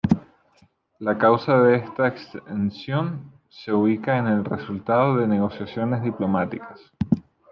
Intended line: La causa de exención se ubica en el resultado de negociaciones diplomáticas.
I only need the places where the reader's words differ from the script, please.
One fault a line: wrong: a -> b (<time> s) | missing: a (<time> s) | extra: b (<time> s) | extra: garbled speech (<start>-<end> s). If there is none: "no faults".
extra: esta (1.8 s)